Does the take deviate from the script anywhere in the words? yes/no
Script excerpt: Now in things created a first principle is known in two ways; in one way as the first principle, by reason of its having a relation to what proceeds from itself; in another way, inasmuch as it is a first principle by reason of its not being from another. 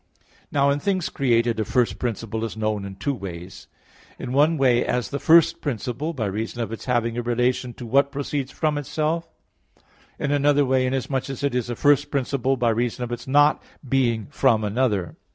no